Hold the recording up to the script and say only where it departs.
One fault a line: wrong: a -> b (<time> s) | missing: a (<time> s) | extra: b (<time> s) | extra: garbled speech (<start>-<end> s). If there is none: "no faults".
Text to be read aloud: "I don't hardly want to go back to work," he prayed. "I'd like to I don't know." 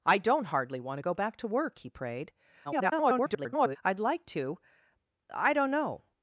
extra: garbled speech (2.6-3.8 s)